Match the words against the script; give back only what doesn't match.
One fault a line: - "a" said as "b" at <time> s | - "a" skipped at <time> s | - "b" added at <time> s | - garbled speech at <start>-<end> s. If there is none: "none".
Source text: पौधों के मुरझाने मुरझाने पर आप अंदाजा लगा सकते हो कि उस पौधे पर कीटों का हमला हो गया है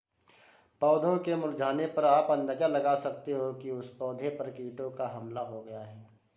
- "मुरझाने" skipped at 1.9 s